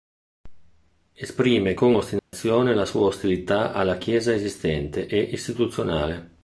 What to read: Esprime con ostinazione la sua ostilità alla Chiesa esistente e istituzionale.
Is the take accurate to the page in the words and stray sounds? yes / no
no